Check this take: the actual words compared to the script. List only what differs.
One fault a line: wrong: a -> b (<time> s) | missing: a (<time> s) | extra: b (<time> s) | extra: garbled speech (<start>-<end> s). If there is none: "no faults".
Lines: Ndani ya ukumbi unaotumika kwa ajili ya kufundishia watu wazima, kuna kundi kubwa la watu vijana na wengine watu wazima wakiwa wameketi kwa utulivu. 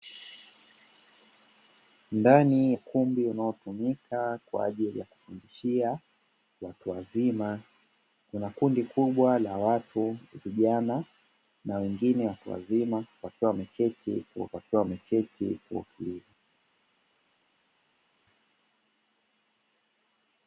missing: ya (2.7 s)
extra: wakiwa wameketi kwa (14.5 s)